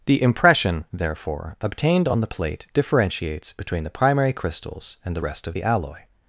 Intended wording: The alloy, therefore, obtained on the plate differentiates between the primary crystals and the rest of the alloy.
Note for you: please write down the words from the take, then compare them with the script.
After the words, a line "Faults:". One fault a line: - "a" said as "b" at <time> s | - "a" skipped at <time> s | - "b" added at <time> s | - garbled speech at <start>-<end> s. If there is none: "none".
The impression, therefore, obtained on the plate differentiates between the primary crystals and the rest of the alloy.
Faults:
- "alloy" said as "impression" at 0.2 s